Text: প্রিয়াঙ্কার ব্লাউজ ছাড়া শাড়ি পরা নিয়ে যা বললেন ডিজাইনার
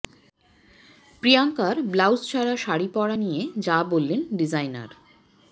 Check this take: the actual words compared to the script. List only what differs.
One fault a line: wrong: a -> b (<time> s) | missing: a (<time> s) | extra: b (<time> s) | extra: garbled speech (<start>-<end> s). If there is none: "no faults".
no faults